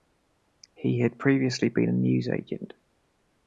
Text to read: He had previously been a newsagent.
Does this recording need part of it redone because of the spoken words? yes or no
no